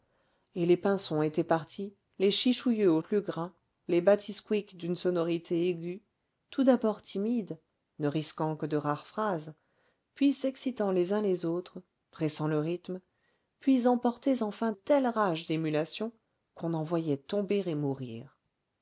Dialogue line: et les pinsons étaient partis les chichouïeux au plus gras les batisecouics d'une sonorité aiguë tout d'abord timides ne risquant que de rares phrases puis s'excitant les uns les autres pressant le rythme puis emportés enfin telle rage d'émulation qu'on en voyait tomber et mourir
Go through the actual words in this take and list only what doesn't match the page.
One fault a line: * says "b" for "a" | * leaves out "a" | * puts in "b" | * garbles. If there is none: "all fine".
all fine